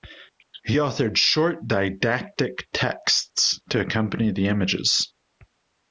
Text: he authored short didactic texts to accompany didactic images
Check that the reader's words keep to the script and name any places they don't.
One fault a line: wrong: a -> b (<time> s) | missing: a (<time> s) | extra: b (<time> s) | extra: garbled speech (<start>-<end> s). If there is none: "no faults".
wrong: didactic -> the (4.3 s)